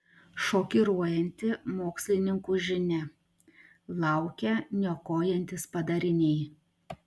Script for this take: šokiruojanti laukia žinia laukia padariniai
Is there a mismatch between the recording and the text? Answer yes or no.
yes